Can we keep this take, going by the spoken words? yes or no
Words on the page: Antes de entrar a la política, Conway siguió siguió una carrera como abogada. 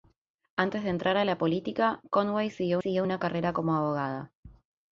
yes